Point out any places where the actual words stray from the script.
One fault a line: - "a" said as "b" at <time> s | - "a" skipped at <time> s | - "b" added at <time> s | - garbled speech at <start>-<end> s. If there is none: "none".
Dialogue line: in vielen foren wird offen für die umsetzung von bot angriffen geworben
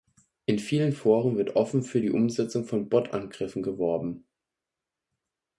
none